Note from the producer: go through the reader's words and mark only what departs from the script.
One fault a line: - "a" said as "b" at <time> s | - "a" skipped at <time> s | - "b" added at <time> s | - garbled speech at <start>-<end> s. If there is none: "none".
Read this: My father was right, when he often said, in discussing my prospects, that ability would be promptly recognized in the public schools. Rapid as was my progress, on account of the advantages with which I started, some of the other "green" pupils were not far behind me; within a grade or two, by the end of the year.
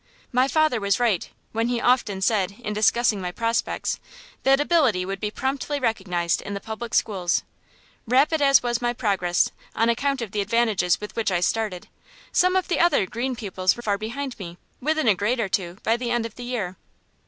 - "not" skipped at 13.8 s